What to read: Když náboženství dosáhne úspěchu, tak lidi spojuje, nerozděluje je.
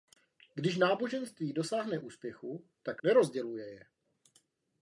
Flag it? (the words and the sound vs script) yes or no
yes